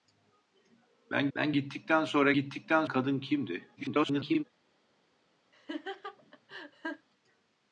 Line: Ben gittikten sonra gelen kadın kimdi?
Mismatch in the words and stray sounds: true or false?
true